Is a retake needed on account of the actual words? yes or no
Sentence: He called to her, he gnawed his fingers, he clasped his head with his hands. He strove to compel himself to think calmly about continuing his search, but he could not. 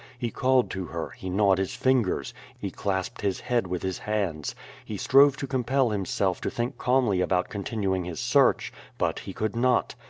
no